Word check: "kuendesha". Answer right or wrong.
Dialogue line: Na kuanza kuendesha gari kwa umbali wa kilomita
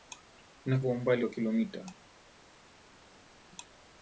wrong